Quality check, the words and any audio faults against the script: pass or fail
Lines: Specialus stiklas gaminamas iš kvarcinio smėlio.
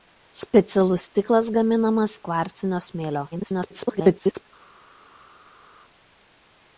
fail